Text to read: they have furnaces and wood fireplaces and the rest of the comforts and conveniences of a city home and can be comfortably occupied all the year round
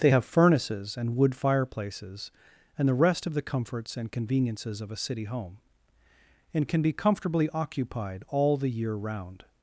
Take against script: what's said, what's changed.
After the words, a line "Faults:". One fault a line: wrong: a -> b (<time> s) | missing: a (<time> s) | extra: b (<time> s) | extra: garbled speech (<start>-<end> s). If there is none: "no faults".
they have furnaces and wood fireplaces and the rest of the comforts and conveniences of a city home and can be comfortably occupied all the year round
Faults:
no faults